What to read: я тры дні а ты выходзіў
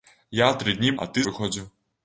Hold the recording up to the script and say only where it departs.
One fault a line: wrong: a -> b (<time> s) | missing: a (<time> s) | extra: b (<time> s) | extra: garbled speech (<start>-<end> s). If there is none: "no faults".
no faults